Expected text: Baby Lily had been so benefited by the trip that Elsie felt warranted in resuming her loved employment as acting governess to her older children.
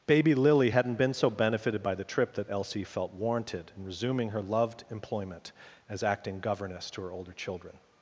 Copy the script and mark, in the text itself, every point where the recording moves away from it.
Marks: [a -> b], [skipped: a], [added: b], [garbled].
Baby Lily [had -> hadn't] been so benefited by the trip that Elsie felt warranted in resuming her loved employment as acting governess to her older children.